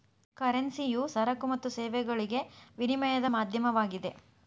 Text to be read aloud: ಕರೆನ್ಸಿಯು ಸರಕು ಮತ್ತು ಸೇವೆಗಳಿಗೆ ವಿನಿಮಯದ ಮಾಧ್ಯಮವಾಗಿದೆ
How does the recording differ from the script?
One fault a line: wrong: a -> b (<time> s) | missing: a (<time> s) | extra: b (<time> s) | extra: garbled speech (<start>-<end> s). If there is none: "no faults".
no faults